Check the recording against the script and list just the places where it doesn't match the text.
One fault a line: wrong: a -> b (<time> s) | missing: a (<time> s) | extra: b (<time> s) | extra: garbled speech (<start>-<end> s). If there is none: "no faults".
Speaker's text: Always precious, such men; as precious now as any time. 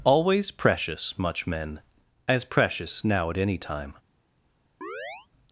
wrong: such -> much (1.2 s)
wrong: as -> at (3.3 s)